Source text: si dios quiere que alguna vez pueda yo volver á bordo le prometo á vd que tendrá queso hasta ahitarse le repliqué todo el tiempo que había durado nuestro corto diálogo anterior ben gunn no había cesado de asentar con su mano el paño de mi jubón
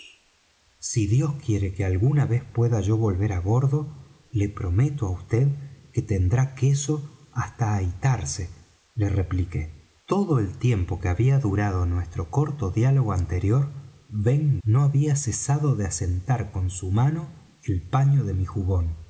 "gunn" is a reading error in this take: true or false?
true